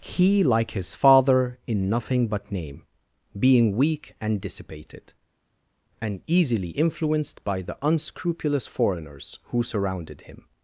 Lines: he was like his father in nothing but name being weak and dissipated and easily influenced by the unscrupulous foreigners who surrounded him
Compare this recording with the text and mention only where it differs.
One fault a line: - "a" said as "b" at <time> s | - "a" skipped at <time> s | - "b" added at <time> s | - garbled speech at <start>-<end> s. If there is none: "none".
- "was" skipped at 0.4 s